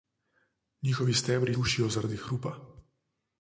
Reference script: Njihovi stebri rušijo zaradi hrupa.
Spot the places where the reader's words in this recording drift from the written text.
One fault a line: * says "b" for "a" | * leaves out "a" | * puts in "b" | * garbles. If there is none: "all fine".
all fine